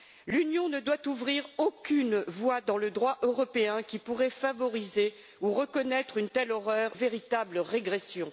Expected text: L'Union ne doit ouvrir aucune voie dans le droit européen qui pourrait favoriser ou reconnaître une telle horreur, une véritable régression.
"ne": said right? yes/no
yes